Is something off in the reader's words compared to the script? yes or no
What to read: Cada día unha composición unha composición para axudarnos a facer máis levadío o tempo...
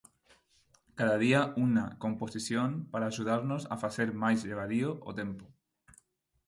yes